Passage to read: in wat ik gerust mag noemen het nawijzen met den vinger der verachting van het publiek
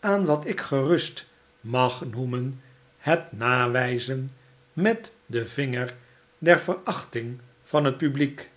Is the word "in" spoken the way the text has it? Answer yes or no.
no